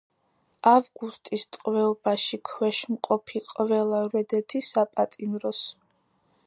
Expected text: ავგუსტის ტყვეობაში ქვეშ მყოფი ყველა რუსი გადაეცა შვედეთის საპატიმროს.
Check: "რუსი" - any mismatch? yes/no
yes